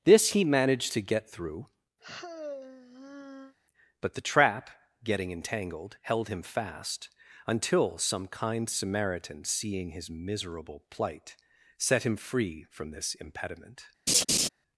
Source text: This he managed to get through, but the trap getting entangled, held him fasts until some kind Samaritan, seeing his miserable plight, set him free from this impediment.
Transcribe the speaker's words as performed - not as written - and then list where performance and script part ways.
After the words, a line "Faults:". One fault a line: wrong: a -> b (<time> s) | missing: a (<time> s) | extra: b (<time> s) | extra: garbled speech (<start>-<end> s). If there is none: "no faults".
This he managed to get through, but the trap getting entangled, held him fast until some kind Samaritan, seeing his miserable plight, set him free from this impediment.
Faults:
wrong: fasts -> fast (6.4 s)